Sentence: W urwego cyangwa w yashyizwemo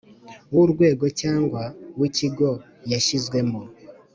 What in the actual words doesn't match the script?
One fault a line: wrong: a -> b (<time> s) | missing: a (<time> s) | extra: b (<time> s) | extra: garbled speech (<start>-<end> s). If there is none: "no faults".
extra: ikigo (2.1 s)